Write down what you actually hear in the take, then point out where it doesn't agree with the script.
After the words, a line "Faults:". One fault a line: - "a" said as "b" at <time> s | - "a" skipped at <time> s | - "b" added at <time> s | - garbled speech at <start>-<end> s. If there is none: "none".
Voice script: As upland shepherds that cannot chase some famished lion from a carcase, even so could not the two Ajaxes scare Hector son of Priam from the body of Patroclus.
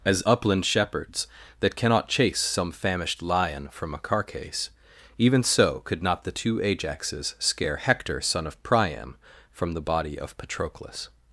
As upland shepherds that cannot chase some famished lion from a carcase, even so could not the two Ajaxes scare Hector son of Priam from the body of Patroclus.
Faults:
none